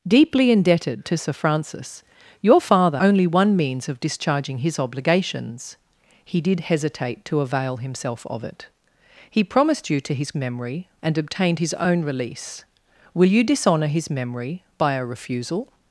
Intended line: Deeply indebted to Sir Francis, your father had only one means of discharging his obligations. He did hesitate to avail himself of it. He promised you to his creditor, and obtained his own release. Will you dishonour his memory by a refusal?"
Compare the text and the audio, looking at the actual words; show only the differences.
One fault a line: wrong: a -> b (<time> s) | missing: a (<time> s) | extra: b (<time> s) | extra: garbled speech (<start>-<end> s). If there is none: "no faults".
missing: had (3.0 s)
wrong: creditor -> memory (10.4 s)